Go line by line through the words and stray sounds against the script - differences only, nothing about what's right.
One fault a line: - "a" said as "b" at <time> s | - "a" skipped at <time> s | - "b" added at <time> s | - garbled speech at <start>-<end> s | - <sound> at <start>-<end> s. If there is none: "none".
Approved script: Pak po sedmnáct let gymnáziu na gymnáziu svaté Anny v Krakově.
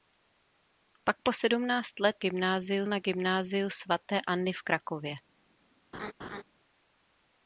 - laugh at 5.9-6.4 s